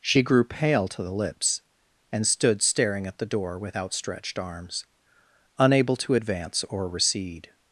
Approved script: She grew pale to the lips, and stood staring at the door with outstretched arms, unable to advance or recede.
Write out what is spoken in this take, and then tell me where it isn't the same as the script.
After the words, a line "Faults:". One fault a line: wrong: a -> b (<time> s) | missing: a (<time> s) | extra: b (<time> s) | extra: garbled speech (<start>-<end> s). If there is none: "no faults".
She grew pale to the lips, and stood staring at the door with outstretched arms, unable to advance or recede.
Faults:
no faults